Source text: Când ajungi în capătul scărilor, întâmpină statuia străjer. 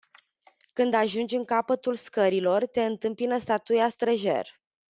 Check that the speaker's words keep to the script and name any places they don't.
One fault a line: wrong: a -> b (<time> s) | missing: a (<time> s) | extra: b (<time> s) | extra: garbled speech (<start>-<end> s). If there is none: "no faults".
extra: te (2.6 s)